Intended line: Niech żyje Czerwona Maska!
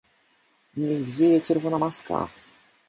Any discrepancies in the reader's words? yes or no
no